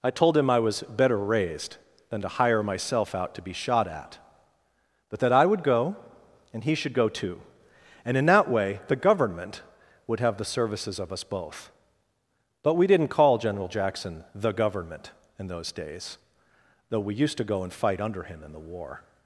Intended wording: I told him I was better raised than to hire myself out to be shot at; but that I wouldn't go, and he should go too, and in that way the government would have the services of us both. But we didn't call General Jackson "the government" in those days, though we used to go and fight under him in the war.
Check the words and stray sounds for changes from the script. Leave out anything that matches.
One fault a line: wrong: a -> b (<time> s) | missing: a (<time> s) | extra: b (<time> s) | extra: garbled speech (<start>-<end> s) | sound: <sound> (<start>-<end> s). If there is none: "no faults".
wrong: wouldn't -> would (5.5 s)